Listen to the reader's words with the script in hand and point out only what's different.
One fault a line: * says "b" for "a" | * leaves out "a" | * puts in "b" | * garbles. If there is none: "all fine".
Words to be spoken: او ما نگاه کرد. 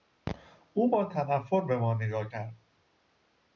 * puts in "با تنفر به"